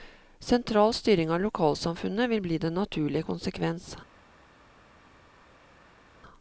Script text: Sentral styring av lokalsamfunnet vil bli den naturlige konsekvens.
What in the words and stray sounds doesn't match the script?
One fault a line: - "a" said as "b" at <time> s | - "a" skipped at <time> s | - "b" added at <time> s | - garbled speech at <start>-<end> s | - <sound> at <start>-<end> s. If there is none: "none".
none